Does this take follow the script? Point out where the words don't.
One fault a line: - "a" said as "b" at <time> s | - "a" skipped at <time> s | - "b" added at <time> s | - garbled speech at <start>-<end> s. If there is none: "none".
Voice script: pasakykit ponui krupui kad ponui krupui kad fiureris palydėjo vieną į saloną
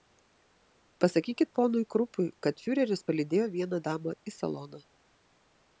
- "ponui krupui kad" skipped at 2.6 s
- "damą" added at 3.9 s